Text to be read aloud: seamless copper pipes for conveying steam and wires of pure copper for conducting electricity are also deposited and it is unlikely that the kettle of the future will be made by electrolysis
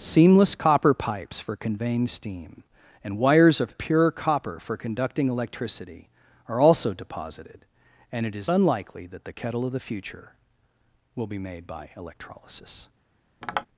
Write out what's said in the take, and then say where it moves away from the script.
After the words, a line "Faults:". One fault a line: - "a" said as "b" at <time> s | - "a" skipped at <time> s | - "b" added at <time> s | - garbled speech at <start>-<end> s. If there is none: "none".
seamless copper pipes for conveying steam and wires of pure copper for conducting electricity are also deposited and it is unlikely that the kettle of the future will be made by electrolysis
Faults:
none